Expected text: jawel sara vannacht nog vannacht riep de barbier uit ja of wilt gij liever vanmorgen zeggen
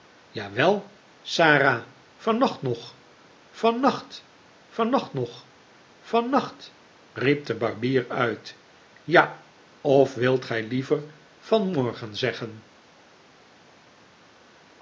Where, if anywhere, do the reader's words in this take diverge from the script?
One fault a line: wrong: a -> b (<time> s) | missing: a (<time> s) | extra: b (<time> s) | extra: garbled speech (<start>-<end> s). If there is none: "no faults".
extra: vannacht nog vannacht (4.7 s)